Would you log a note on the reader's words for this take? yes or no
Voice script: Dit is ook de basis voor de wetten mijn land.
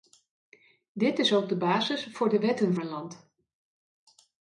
no